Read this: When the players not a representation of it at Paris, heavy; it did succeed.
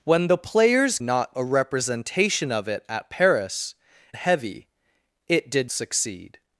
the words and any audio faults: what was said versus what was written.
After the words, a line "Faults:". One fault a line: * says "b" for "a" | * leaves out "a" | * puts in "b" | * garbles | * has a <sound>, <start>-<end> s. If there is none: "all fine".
When the players not a representation of it at Paris, heavy; it did succeed.
Faults:
all fine